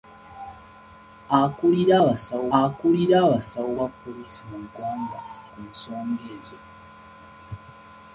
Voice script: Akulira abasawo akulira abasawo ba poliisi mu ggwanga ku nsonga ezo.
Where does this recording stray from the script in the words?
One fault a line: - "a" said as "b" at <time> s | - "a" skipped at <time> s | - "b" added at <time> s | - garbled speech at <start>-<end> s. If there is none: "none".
none